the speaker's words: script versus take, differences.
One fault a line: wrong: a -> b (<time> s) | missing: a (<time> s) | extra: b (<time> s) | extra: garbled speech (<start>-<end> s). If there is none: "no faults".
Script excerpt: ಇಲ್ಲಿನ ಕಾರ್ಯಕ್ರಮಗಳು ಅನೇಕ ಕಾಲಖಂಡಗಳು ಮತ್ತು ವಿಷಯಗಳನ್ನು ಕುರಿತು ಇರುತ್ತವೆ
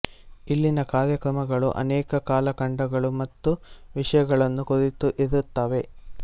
no faults